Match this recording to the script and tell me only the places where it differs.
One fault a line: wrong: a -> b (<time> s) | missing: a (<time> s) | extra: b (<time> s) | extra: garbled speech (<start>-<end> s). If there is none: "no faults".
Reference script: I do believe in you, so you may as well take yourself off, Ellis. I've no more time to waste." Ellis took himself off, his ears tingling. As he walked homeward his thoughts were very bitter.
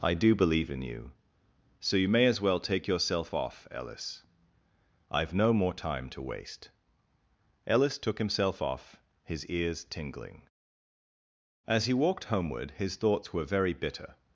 no faults